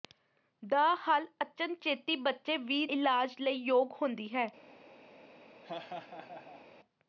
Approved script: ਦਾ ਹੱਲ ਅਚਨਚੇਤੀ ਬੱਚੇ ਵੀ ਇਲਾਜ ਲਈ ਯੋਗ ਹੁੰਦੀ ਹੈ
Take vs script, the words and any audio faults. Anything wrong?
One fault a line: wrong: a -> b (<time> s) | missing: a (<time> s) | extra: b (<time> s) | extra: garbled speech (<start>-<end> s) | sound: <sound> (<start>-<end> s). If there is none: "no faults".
sound: laugh (5.6-6.6 s)